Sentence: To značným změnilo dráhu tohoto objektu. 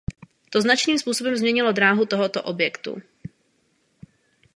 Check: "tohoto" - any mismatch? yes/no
no